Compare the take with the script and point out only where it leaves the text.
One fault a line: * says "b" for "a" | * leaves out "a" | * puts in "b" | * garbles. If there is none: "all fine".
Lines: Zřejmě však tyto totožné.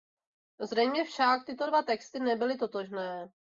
* puts in "dva texty nebyly"